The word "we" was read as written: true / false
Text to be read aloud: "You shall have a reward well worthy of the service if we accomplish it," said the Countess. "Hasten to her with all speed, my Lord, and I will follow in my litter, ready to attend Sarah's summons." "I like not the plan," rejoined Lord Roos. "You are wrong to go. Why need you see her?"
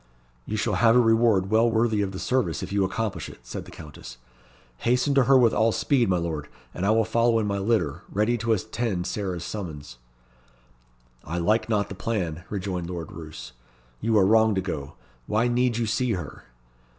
false